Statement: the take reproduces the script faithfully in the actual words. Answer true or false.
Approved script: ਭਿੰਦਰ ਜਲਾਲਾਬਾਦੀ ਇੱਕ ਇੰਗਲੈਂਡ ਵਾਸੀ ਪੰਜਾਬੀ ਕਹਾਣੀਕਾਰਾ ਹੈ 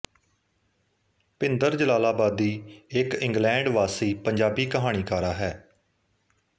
true